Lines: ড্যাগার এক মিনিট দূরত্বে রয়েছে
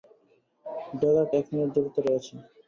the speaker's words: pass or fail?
pass